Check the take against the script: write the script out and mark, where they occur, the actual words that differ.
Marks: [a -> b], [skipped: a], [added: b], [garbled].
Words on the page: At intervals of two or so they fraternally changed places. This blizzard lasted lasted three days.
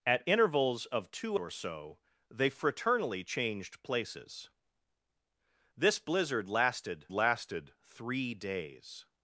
At intervals of two or so they fraternally changed places. This blizzard lasted lasted three days.